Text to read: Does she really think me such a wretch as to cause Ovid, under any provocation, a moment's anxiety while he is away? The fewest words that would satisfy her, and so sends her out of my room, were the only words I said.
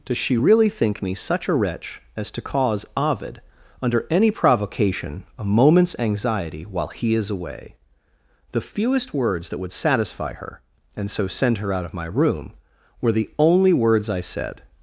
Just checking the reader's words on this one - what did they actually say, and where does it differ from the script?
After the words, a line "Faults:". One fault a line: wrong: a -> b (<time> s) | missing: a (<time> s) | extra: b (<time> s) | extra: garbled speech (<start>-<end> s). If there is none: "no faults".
Does she really think me such a wretch as to cause Ovid, under any provocation, a moment's anxiety while he is away? The fewest words that would satisfy her, and so send her out of my room, were the only words I said.
Faults:
wrong: sends -> send (11.3 s)